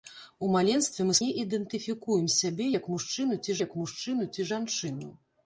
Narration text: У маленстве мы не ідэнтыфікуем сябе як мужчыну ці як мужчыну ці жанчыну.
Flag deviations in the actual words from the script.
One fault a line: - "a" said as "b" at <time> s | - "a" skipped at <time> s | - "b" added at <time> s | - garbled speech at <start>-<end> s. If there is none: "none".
none